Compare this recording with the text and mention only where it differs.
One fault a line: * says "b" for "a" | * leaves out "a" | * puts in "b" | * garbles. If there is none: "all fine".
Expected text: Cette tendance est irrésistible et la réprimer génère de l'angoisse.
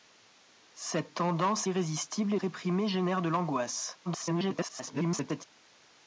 * leaves out "est"
* leaves out "la"
* garbles